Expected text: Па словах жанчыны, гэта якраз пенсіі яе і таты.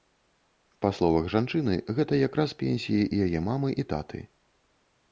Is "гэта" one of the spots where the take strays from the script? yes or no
no